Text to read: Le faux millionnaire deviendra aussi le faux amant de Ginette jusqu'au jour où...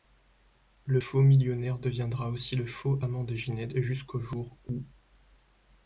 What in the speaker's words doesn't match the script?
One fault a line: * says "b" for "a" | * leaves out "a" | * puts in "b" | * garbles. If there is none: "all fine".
all fine